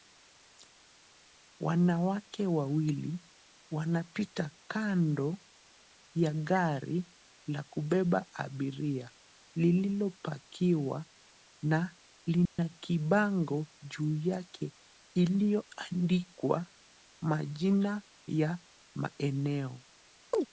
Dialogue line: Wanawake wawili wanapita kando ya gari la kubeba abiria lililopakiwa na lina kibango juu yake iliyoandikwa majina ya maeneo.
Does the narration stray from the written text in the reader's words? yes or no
no